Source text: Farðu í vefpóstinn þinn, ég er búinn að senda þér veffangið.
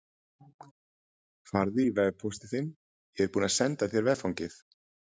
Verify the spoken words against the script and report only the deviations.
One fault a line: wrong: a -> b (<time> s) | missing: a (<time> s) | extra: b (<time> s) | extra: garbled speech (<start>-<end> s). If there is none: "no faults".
no faults